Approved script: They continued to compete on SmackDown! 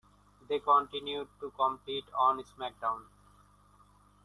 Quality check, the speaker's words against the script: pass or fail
pass